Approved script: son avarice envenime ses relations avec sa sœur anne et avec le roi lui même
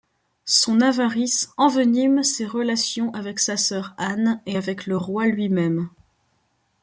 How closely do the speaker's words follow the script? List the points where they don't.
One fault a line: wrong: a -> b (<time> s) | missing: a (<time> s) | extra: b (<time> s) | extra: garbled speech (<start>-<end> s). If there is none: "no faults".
no faults